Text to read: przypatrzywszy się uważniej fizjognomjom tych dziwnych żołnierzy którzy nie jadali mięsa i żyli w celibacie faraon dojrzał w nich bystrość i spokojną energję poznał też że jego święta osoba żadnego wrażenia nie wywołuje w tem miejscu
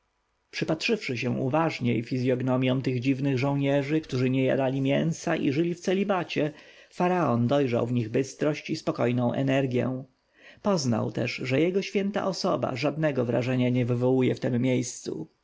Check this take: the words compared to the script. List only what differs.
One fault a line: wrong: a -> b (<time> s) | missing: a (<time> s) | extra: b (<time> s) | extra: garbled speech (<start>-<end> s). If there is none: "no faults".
no faults